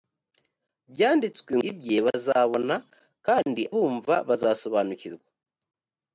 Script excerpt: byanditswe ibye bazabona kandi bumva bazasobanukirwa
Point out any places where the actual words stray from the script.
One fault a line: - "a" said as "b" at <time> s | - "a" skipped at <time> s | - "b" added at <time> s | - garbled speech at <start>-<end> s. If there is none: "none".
none